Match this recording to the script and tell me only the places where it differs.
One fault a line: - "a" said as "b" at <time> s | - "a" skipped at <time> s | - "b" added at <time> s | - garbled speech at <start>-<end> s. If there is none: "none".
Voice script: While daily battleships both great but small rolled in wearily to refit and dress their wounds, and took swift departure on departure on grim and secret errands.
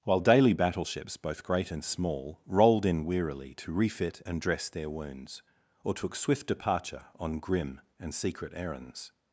- "but" said as "and" at 1.7 s
- "and" said as "or" at 5.8 s
- "departure on" skipped at 7.4 s